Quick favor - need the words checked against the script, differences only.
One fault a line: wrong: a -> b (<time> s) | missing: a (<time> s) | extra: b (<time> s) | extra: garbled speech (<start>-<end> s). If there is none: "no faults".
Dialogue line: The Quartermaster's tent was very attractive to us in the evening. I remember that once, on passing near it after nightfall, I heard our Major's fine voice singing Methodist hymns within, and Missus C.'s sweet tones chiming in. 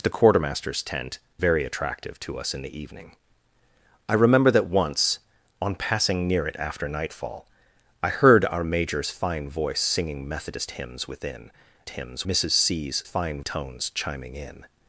missing: was (1.2 s)
wrong: and -> hymns (11.9 s)
wrong: sweet -> fine (13.0 s)